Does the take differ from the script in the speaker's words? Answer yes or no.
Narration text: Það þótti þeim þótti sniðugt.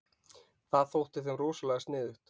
yes